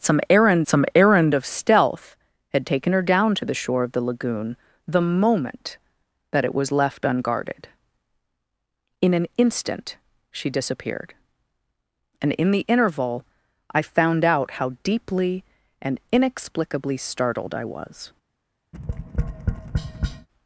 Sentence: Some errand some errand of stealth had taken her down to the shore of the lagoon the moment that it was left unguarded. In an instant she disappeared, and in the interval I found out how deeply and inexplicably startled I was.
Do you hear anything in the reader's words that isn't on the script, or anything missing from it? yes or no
no